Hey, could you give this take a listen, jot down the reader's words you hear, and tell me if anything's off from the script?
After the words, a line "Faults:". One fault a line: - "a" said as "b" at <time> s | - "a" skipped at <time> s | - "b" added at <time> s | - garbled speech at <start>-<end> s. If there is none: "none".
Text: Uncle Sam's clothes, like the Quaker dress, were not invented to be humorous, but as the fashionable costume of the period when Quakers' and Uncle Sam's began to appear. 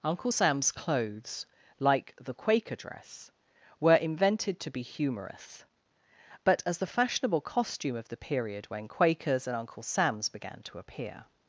Uncle Sam's clothes, like the Quaker dress, were invented to be humorous, but as the fashionable costume of the period when Quakers' and Uncle Sam's began to appear.
Faults:
- "not" skipped at 3.9 s